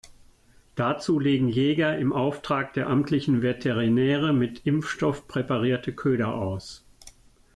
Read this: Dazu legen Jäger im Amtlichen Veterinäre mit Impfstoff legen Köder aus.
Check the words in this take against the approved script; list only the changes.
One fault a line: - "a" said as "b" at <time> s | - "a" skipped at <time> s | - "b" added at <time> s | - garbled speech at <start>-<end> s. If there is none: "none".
- "Auftrag der" added at 2.1 s
- "legen" said as "präparierte" at 5.3 s